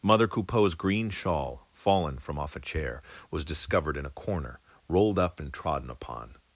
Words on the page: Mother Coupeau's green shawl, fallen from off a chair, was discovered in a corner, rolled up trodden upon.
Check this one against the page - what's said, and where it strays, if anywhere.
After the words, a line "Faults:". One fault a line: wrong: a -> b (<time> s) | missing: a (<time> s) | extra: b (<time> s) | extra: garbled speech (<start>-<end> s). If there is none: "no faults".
Mother Coupeau's green shawl, fallen from off a chair, was discovered in a corner, rolled up and trodden upon.
Faults:
extra: and (5.4 s)